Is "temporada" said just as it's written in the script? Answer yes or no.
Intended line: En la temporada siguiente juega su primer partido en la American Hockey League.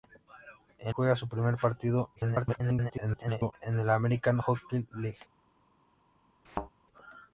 no